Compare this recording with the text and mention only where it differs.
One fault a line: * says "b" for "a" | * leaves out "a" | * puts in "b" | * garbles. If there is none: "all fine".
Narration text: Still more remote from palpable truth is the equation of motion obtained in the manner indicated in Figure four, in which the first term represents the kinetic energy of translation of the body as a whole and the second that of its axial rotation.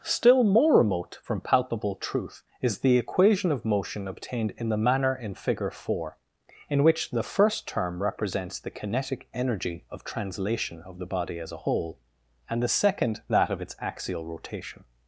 * leaves out "indicated"